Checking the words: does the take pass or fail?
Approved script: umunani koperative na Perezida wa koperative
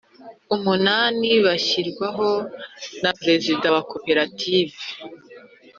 fail